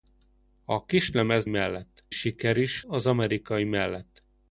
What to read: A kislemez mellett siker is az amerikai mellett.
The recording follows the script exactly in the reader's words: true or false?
true